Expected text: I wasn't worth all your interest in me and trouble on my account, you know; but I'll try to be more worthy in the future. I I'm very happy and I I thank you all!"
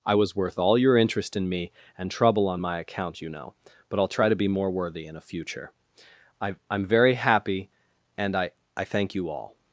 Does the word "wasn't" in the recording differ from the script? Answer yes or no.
yes